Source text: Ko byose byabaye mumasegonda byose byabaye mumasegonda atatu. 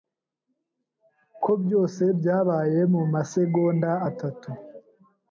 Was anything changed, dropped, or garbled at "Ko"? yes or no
no